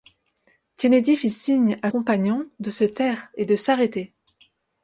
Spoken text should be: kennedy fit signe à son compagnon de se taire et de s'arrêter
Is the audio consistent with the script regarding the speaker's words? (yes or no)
no